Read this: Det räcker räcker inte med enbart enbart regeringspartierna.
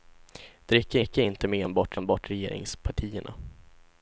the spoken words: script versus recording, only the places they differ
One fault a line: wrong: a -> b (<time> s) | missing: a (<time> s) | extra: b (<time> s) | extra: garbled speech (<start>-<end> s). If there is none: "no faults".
no faults